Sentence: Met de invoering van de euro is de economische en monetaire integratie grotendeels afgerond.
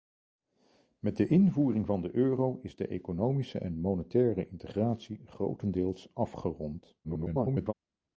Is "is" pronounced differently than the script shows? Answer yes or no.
no